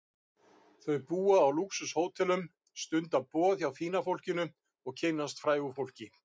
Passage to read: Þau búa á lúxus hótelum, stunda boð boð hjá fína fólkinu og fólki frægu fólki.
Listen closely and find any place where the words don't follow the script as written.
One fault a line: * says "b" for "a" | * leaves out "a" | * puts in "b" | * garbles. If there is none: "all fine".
* leaves out "boð"
* says "kynnast" for "fólki"